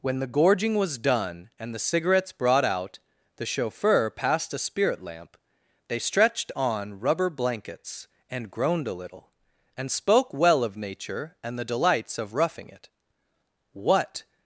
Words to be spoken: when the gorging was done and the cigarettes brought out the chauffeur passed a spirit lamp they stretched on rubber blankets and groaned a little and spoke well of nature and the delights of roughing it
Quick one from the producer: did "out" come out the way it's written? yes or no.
yes